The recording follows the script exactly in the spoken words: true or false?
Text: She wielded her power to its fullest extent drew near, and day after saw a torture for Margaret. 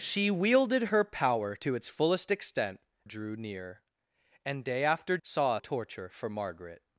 true